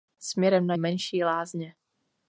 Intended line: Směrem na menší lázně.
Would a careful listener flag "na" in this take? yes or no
no